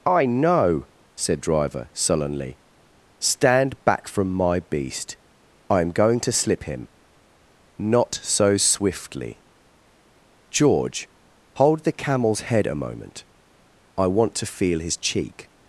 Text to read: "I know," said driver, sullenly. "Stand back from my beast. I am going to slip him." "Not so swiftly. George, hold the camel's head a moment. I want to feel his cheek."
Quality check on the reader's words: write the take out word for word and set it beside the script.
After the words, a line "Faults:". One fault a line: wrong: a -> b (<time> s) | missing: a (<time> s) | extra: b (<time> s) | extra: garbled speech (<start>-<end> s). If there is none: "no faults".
"I know," said driver, sullenly. "Stand back from my beast. I am going to slip him." "Not so swiftly. George, hold the camel's head a moment. I want to feel his cheek."
Faults:
no faults